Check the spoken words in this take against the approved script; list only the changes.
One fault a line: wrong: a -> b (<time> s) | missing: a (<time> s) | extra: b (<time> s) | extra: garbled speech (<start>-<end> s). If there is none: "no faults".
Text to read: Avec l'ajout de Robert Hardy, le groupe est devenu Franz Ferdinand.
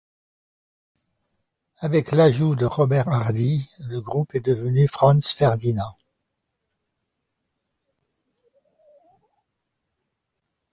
no faults